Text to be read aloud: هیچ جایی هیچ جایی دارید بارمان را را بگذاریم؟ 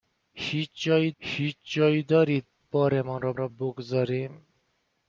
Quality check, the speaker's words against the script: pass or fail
pass